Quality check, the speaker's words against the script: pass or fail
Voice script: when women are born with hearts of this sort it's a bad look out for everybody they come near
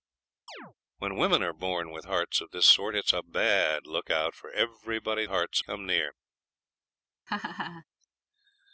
fail